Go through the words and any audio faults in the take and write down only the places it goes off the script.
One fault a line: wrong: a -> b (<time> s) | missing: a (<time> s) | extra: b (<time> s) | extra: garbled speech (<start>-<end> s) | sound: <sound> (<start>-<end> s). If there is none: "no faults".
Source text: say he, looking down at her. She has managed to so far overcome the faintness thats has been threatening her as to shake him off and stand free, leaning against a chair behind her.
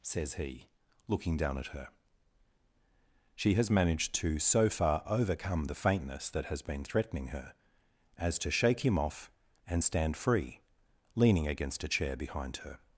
wrong: say -> says (0.0 s)
wrong: thats -> that (6.3 s)